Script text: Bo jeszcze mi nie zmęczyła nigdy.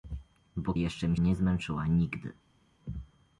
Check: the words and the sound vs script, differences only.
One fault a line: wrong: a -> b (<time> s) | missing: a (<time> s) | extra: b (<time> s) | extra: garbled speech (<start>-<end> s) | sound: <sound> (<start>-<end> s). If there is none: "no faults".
no faults